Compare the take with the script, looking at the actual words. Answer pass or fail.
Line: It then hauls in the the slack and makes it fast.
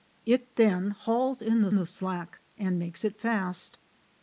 pass